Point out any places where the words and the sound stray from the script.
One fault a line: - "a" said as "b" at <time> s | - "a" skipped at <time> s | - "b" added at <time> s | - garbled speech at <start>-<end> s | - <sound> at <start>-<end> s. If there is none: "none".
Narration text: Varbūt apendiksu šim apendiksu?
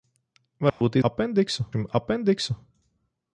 - dropout at 0.7-0.8 s